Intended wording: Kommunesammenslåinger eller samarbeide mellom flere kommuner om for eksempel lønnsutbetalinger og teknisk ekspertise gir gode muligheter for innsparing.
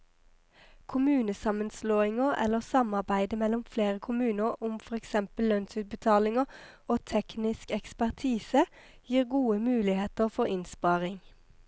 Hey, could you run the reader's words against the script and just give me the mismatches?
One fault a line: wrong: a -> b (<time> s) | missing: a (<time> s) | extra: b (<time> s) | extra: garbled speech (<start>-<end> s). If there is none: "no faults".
no faults